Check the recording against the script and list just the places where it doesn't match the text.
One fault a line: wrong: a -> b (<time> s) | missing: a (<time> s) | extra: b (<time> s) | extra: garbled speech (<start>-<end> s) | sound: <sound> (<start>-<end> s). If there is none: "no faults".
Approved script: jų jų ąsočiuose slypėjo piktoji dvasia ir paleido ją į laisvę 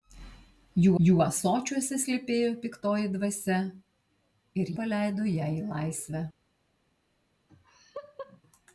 sound: laugh (7.5-8.4 s)